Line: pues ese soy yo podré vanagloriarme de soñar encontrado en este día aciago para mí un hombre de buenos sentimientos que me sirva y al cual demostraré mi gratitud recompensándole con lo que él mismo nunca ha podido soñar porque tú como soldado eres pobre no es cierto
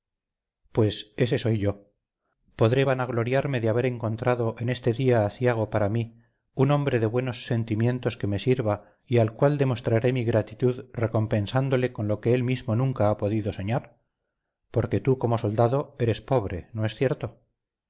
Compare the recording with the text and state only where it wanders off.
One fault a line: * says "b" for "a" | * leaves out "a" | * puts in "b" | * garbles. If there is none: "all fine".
* says "haber" for "soñar"